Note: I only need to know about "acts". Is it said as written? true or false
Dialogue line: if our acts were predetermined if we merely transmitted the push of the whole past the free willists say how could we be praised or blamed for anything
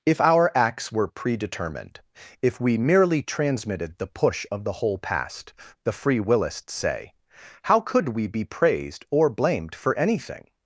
true